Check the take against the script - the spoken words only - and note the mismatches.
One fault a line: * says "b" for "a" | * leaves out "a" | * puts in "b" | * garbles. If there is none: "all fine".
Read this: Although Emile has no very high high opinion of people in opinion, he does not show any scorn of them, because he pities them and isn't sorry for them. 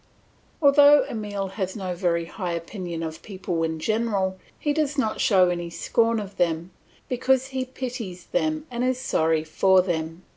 * leaves out "high"
* says "general" for "opinion"
* says "is" for "isn't"